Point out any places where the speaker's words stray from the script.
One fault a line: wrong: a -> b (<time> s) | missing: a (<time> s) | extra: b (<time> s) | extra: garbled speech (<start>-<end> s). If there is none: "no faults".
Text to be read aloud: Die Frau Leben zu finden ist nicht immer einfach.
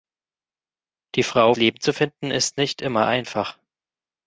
no faults